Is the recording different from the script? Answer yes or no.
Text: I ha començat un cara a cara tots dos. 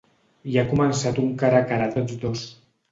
no